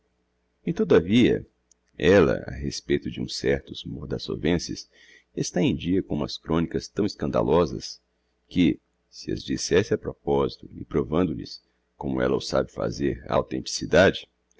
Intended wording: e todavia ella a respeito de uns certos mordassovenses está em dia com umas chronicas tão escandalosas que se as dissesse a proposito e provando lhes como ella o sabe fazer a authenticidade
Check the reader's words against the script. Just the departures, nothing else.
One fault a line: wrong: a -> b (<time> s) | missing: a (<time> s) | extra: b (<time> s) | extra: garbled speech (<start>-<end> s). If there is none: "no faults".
no faults